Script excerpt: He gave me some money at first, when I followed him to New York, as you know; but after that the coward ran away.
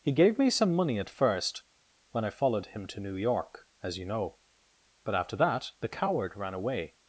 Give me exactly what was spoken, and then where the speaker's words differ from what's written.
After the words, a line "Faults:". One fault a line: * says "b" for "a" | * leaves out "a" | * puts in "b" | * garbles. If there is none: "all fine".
He gave me some money at first, when I followed him to New York, as you know; but after that the coward ran away.
Faults:
all fine